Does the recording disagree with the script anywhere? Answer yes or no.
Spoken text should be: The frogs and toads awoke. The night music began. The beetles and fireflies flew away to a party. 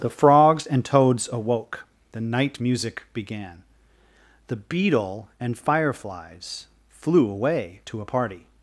yes